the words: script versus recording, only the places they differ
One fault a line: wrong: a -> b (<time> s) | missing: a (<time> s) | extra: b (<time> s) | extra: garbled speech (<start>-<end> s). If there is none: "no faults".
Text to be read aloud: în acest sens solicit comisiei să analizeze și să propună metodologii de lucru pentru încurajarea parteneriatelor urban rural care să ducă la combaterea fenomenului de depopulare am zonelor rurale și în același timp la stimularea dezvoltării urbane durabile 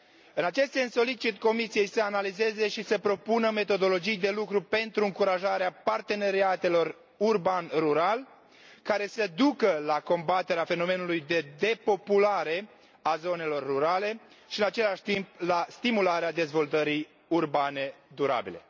wrong: am -> a (13.0 s)